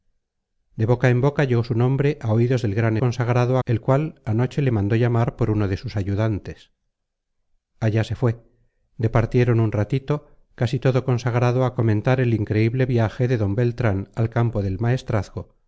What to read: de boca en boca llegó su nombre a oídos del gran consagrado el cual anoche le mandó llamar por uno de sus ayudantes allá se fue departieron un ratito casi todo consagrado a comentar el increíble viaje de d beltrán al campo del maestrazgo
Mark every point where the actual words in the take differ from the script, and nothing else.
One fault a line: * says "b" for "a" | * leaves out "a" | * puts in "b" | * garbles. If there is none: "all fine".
all fine